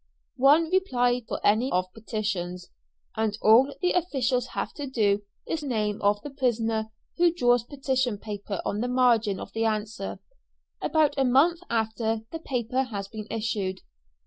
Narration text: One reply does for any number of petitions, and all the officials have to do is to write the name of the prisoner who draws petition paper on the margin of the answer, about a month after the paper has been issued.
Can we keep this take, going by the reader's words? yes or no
no